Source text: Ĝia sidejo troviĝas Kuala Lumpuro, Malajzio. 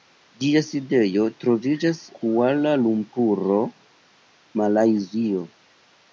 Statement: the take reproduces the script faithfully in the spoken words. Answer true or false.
true